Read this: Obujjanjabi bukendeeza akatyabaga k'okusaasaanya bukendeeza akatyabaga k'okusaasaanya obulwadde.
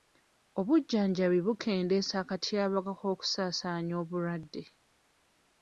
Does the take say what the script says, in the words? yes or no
no